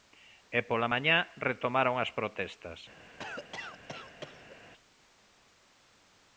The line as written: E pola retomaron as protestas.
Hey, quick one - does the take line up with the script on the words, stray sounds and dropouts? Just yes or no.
no